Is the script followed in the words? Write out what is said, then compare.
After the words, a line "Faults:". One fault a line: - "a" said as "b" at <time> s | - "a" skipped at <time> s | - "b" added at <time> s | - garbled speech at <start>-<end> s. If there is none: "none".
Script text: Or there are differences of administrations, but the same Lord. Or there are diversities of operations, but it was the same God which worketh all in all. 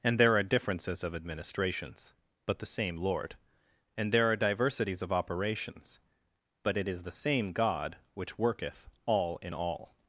And there are differences of administrations, but the same Lord. And there are diversities of operations, but it is the same God which worketh all in all.
Faults:
- "Or" said as "And" at 0.0 s
- "Or" said as "And" at 4.0 s
- "was" said as "is" at 6.9 s